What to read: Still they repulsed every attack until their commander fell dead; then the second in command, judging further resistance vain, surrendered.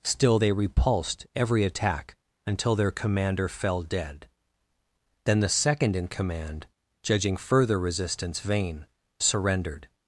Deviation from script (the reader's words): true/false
false